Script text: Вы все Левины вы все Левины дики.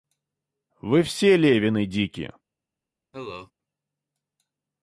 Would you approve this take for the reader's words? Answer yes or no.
no